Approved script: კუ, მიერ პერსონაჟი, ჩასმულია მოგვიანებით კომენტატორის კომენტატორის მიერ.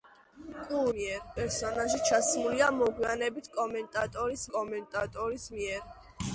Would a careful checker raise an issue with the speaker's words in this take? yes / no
no